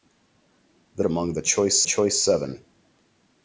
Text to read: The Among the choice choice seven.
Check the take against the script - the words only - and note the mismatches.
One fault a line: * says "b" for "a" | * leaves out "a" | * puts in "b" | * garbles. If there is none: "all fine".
all fine